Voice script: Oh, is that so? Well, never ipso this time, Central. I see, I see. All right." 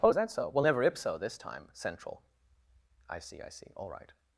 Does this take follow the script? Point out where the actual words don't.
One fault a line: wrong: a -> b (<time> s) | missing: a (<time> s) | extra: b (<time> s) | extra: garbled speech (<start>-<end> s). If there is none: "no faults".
no faults